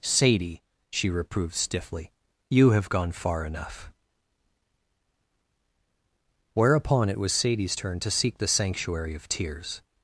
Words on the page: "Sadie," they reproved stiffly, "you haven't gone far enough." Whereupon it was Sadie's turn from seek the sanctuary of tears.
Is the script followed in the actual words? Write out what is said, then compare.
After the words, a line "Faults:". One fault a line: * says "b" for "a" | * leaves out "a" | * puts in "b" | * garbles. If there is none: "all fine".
"Sadie," she reproved stiffly, "you have gone far enough." Whereupon it was Sadie's turn to seek the sanctuary of tears.
Faults:
* says "she" for "they"
* says "have" for "haven't"
* says "to" for "from"